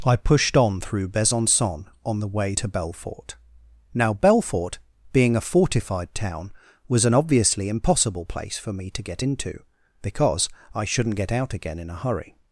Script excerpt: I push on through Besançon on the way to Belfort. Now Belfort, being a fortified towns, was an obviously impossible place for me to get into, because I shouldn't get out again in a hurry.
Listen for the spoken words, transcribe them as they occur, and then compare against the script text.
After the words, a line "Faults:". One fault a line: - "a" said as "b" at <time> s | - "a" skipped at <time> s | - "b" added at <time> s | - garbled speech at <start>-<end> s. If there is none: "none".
I pushed on through Besançon on the way to Belfort. Now Belfort, being a fortified town, was an obviously impossible place for me to get into, because I shouldn't get out again in a hurry.
Faults:
- "push" said as "pushed" at 0.1 s
- "towns" said as "town" at 6.1 s